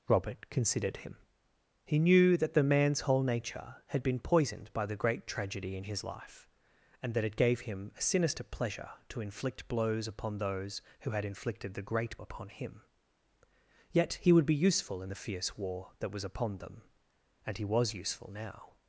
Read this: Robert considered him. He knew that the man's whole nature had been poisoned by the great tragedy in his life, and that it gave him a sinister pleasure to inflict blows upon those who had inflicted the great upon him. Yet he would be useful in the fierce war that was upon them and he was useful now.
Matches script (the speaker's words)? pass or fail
pass